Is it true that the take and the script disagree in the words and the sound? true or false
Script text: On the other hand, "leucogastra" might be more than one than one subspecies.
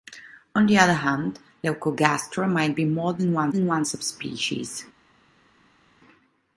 false